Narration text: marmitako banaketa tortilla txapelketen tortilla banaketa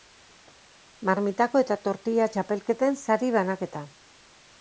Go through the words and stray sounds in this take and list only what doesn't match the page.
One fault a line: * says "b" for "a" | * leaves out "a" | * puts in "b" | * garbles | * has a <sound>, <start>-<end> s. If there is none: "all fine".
* says "eta" for "banaketa"
* says "sari" for "tortilla"